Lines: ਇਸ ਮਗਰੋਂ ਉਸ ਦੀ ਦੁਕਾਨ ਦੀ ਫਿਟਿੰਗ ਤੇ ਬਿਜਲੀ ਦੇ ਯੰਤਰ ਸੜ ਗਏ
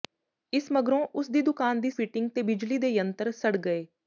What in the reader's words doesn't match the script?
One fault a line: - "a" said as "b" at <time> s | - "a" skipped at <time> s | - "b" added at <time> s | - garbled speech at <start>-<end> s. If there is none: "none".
none